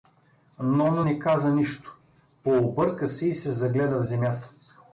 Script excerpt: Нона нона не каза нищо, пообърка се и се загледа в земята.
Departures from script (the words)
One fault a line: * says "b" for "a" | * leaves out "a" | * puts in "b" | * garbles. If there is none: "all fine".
* leaves out "нона"